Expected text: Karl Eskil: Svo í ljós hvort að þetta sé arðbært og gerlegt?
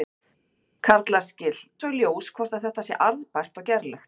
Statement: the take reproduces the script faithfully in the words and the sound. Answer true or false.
true